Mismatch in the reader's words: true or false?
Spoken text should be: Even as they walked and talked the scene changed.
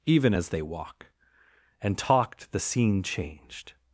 true